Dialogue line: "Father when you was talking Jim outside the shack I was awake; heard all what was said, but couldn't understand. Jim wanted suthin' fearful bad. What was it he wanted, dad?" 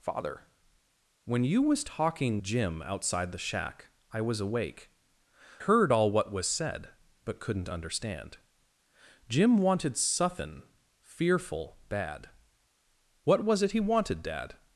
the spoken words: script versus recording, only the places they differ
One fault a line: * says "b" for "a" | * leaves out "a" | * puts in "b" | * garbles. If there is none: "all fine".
all fine